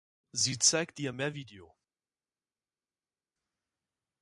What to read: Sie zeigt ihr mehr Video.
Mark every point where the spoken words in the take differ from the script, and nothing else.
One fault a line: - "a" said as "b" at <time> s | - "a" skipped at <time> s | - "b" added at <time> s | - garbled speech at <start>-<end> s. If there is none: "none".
none